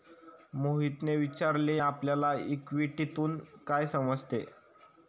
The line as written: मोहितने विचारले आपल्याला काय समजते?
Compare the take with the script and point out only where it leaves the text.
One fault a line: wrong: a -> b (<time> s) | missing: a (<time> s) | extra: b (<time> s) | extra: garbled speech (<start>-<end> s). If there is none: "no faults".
extra: इक्विटीतून (2.5 s)